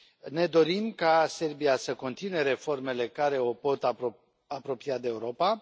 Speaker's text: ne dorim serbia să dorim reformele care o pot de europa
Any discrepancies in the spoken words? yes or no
yes